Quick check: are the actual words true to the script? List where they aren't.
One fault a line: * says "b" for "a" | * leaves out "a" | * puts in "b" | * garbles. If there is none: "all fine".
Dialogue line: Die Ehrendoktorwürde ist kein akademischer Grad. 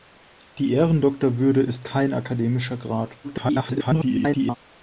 * garbles